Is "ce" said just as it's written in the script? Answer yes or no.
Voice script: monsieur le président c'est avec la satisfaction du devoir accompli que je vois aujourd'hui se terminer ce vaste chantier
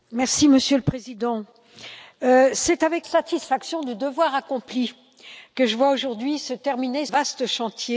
no